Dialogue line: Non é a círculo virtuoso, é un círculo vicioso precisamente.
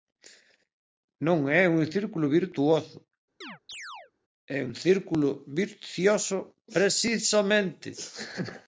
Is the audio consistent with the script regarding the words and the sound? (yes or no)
no